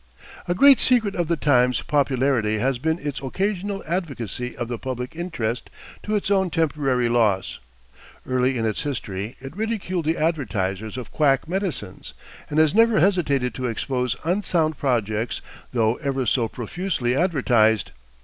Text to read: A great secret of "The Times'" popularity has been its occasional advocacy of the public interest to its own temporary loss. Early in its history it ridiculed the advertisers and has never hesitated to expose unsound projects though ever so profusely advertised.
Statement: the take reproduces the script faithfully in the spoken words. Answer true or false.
false